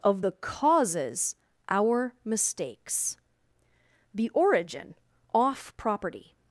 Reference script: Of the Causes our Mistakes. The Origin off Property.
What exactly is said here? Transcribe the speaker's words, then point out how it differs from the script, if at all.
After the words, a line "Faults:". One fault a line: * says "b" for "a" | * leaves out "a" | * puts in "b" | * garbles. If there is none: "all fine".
Of the Causes our Mistakes. The Origin off Property.
Faults:
all fine